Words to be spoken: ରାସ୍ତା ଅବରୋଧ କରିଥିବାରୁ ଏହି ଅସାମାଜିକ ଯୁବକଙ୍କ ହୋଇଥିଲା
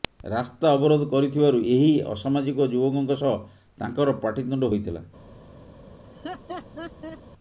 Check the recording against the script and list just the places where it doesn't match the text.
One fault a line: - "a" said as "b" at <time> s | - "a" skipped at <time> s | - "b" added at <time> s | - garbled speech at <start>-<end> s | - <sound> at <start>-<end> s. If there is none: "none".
- "ସହ ତାଙ୍କର ପାଟିତୁଣ୍ଡ" added at 3.2 s
- laugh at 6.0-7.2 s